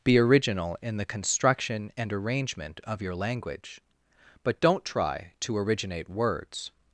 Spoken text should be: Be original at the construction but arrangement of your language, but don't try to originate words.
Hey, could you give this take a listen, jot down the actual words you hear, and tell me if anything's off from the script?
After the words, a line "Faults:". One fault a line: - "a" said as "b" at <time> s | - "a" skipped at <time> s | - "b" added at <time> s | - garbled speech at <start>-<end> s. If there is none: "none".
Be original in the construction and arrangement of your language, but don't try to originate words.
Faults:
- "at" said as "in" at 0.8 s
- "but" said as "and" at 1.9 s